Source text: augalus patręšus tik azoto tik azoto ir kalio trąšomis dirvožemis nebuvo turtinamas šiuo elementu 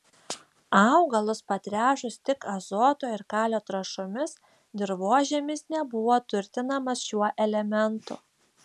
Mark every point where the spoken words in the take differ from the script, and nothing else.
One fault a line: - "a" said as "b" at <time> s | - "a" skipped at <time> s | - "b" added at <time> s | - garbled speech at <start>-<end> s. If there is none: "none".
- "tik azoto" skipped at 3.1 s